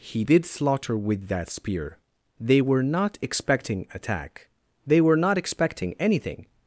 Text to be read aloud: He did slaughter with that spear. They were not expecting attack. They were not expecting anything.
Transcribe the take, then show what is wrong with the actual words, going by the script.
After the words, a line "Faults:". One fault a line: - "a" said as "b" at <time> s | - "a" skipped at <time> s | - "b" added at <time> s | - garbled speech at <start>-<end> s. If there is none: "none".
He did slaughter with that spear. They were not expecting attack. They were not expecting anything.
Faults:
none